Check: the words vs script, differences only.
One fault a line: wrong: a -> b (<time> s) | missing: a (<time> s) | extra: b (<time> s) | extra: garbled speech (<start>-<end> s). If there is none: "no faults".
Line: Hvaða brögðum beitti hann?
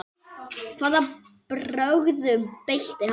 no faults